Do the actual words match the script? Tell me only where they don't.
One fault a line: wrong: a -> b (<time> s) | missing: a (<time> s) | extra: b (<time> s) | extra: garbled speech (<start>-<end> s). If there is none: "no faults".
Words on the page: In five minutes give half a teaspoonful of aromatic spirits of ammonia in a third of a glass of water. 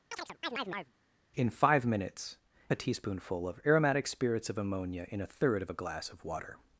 missing: give half (2.4 s)